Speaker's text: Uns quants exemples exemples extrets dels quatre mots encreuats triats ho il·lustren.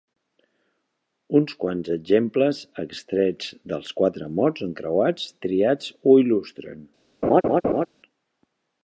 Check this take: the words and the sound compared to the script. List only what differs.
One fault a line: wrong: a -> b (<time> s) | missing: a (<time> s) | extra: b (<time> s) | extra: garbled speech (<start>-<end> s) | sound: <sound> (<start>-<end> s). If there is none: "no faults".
missing: exemples (2.6 s)
sound: laugh (7.2-7.9 s)